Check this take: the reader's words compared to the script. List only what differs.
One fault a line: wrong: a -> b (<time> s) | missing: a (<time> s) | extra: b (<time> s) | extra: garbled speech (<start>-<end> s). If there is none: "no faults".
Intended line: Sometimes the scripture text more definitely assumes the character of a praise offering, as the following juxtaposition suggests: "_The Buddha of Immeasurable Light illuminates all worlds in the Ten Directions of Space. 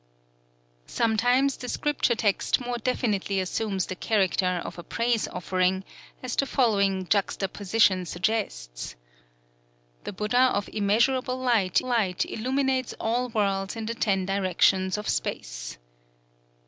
extra: Light (11.8 s)